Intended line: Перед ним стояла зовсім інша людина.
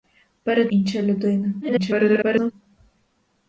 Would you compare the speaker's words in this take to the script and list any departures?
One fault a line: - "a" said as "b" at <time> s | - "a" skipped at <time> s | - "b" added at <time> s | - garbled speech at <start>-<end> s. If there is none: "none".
- "ним стояла зовсім" skipped at 0.7 s
- garbled speech at 1.6-2.5 s